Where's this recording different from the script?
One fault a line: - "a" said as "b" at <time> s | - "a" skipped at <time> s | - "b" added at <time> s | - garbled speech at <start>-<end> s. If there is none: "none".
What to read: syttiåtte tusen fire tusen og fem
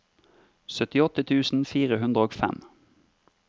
- "tusen" said as "hundre" at 2.0 s